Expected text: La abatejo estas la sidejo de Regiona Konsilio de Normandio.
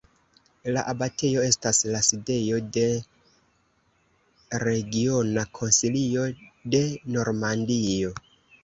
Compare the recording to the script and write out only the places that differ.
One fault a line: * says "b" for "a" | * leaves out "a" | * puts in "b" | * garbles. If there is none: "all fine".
all fine